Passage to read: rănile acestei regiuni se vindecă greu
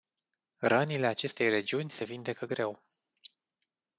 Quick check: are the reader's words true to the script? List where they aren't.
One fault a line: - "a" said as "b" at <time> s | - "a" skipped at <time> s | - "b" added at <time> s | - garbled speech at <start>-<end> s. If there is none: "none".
none